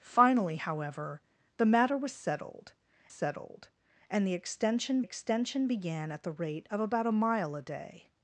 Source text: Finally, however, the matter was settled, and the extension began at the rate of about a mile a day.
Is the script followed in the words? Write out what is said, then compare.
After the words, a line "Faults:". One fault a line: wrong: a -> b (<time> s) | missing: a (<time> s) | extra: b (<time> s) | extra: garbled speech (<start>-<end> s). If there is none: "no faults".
Finally, however, the matter was settled settled, and the extension extension began at the rate of about a mile a day.
Faults:
extra: settled (3.1 s)
extra: extension (5.0 s)